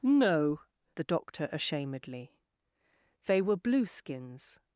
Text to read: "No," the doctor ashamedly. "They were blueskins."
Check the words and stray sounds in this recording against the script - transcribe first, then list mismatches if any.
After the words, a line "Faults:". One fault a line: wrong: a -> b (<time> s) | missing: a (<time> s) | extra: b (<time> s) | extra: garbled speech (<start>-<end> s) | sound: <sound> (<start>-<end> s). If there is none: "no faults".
"No," the doctor ashamedly. "They were blueskins."
Faults:
no faults